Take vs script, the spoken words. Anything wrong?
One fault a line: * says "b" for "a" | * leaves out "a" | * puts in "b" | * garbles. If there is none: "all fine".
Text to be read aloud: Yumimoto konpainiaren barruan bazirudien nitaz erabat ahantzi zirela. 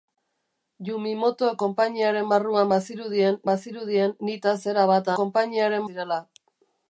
* puts in "bazirudien"
* says "konpainiaren" for "ahantzi"